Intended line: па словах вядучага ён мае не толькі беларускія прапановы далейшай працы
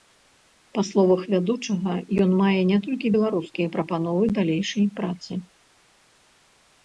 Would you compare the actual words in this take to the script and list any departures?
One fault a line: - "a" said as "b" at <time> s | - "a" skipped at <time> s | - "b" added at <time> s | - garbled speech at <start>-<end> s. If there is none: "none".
none